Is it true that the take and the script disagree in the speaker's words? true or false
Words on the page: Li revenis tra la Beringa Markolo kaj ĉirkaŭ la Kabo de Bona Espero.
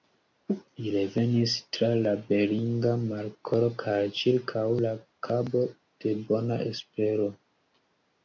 false